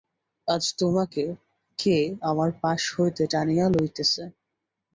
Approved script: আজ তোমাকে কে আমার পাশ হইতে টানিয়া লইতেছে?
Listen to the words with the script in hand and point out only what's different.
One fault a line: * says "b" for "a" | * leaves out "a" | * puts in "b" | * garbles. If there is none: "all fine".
all fine